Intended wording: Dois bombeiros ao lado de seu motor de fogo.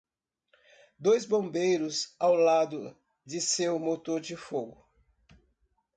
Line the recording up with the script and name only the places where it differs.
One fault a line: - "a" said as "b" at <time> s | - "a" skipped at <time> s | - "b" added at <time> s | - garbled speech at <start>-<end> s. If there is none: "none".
none